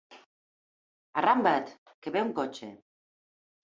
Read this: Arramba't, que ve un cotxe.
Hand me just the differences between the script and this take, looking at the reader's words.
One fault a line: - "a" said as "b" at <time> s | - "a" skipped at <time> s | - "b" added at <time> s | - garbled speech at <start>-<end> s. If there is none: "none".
none